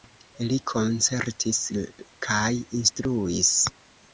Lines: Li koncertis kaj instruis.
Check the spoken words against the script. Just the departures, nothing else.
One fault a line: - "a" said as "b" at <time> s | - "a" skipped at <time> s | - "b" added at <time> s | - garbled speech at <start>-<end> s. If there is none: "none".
none